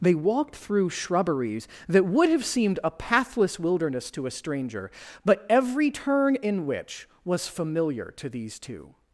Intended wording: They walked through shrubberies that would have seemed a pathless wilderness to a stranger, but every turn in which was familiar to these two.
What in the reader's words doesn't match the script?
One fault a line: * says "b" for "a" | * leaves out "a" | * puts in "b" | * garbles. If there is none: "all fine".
all fine